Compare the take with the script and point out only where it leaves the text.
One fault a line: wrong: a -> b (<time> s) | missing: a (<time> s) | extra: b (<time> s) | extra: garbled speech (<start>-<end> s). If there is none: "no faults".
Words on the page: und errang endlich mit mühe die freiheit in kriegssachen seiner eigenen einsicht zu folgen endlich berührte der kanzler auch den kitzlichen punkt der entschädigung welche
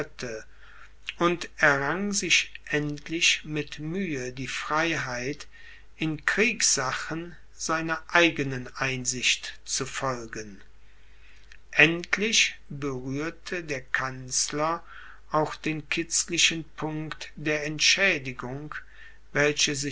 extra: sich (2.1 s)